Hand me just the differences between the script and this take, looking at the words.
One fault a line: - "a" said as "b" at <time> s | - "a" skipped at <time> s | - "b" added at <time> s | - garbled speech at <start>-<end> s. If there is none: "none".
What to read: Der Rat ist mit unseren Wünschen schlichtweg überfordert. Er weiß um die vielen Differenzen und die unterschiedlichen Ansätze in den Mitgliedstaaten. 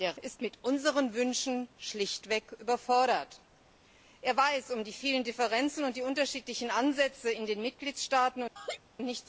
- "Rat" skipped at 0.2 s